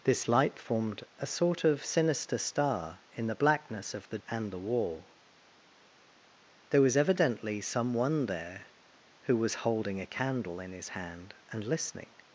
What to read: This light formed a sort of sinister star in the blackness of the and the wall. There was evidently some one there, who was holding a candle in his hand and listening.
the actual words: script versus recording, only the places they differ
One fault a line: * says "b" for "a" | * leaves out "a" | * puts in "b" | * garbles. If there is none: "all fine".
all fine